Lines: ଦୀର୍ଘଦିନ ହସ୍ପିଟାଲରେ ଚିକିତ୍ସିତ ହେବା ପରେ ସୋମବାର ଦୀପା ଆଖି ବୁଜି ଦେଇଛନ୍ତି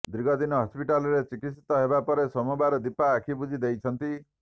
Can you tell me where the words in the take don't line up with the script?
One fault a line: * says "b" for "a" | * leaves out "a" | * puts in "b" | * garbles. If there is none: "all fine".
all fine